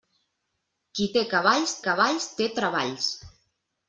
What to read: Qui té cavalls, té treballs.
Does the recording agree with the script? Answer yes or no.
no